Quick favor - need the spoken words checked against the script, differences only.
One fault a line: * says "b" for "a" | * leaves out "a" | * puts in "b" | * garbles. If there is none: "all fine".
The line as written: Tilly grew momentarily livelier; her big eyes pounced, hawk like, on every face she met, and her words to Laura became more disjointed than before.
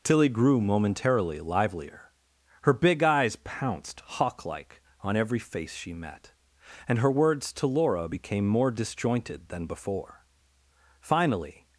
* puts in "Finally"